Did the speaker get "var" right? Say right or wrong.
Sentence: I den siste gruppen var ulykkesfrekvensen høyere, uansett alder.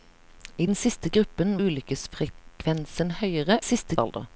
wrong